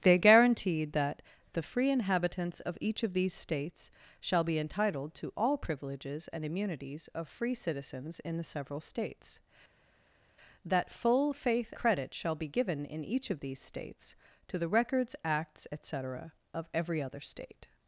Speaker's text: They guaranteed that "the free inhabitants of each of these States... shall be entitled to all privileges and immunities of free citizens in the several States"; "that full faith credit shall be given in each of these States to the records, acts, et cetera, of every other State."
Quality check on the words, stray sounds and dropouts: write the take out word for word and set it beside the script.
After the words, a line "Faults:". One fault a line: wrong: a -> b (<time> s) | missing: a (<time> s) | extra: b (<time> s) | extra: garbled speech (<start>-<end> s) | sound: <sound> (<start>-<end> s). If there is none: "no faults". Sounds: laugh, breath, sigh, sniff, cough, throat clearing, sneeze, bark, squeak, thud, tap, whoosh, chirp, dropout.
They guaranteed that "the free inhabitants of each of these States... shall be entitled to all privileges and immunities of free citizens in the several States"; "that full faith credit shall be given in each of these States to the records, acts, et cetera, of every other State."
Faults:
no faults